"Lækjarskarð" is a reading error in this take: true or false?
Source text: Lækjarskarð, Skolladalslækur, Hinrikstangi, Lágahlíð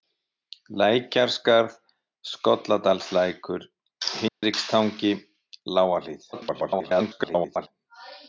false